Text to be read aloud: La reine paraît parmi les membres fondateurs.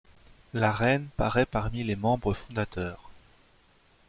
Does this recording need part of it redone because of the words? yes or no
no